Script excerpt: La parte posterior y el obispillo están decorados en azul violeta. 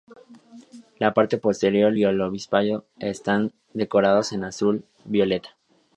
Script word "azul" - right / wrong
right